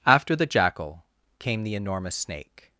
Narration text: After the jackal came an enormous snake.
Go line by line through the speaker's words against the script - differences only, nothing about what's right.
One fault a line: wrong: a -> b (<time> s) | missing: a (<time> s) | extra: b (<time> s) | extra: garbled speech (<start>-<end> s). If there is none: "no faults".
wrong: an -> the (1.6 s)